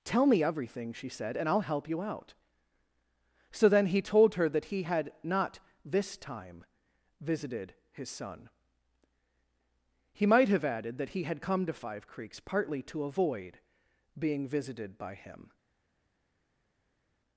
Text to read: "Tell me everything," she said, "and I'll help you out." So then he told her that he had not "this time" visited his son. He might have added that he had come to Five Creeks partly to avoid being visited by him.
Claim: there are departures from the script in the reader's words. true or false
false